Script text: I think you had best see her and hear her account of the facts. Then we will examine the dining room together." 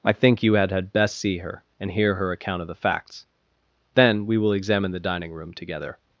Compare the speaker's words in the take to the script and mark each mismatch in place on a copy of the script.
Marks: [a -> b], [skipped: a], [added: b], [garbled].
I think you had [added: had] best see her and hear her account of the facts. Then we will examine the dining room together."